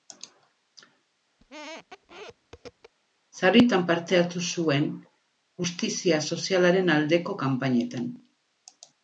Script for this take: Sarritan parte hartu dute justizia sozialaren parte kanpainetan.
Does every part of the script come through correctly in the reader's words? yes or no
no